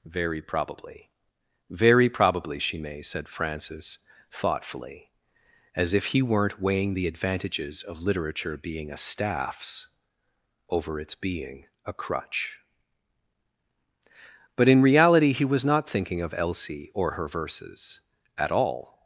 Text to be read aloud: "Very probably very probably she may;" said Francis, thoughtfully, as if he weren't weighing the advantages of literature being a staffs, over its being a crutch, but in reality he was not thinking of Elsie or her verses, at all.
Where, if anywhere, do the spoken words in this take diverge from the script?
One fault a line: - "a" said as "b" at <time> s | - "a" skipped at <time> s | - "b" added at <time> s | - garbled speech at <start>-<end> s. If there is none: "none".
none